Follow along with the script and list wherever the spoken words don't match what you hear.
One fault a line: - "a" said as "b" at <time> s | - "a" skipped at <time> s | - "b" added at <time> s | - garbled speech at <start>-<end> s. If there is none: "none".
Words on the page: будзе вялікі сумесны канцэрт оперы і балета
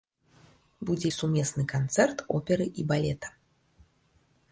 - "вялікі" skipped at 1.1 s